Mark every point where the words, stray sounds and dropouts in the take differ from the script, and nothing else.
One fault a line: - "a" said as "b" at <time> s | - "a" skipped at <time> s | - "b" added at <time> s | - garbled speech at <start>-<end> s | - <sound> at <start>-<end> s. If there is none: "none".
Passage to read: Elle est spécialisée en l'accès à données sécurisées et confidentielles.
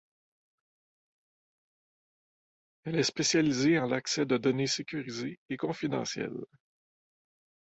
- "à" said as "de" at 4.3 s